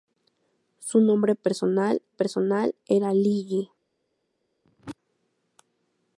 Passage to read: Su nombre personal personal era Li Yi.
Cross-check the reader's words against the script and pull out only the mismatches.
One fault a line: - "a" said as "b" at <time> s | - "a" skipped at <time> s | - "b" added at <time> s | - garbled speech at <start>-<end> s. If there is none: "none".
none